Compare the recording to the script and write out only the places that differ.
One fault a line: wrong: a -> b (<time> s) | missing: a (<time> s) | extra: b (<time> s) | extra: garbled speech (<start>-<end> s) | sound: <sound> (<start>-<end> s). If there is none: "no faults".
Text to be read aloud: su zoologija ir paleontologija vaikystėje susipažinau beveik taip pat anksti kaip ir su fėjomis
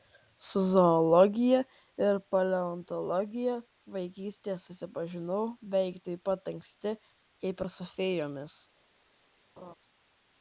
sound: laugh (9.6-9.7 s)